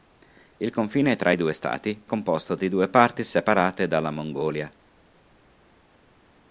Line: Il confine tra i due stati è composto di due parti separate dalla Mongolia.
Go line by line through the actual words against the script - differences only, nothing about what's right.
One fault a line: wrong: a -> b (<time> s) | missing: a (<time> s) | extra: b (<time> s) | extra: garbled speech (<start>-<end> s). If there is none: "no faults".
missing: è (2.1 s)